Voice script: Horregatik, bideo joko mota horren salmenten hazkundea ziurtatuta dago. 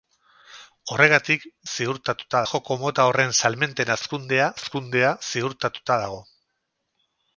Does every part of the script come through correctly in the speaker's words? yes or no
no